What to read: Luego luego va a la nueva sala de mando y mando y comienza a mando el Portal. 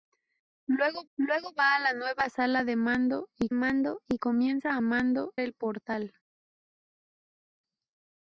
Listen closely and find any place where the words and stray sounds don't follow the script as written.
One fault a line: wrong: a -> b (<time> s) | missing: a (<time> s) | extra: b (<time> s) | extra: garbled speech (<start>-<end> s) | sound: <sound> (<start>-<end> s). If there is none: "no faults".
no faults